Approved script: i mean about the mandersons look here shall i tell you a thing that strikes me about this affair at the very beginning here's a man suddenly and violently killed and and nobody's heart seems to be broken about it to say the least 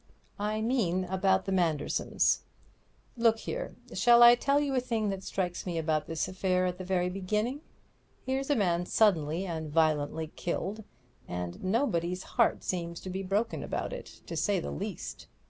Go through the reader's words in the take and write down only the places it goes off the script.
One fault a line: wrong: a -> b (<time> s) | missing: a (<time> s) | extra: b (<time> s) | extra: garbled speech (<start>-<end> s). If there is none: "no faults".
missing: and (11.6 s)